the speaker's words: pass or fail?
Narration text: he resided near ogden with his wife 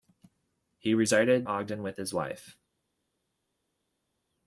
fail